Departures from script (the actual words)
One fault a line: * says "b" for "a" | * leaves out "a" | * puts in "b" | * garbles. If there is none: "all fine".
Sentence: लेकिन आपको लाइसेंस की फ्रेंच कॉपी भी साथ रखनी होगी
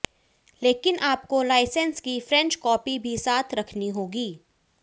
all fine